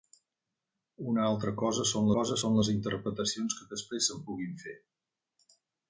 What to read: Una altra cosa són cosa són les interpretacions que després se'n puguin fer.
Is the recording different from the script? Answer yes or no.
no